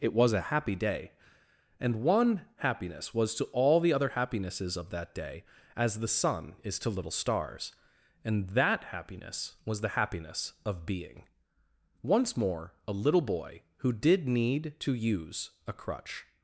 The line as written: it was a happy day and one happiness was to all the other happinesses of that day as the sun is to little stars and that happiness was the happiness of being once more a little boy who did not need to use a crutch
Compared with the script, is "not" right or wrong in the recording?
wrong